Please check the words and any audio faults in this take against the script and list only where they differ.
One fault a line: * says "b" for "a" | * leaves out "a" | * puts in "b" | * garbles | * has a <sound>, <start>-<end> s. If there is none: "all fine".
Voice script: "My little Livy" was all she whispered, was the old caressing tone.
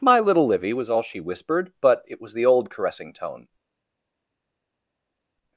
* puts in "but it"